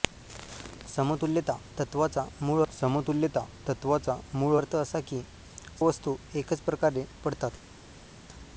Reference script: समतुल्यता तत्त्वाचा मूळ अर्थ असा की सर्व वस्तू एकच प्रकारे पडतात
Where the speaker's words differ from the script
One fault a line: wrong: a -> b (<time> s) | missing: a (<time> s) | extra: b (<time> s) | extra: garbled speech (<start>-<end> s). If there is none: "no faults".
extra: समतुल्यता तत्त्वाचा मूळ (2.7 s)
missing: सर्व (5.2 s)